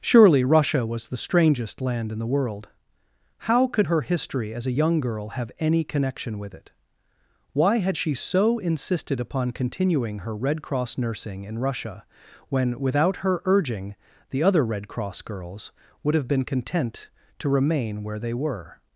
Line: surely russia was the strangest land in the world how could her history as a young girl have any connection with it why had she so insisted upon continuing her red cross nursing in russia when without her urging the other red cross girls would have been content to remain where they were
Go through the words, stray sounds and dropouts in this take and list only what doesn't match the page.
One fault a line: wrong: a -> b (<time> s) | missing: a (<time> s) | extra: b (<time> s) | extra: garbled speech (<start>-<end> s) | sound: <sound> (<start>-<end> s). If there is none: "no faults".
no faults